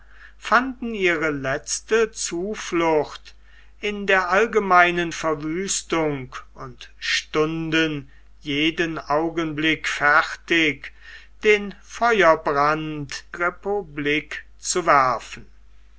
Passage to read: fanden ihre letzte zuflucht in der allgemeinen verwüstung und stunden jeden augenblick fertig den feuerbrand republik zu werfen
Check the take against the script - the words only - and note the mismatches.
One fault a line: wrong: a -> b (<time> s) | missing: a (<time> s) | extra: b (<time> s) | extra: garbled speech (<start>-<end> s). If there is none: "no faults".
no faults